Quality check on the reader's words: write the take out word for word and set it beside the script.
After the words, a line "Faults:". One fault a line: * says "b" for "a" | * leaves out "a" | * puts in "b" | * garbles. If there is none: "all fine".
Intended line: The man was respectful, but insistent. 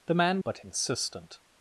The man but insistent.
Faults:
* leaves out "was respectful"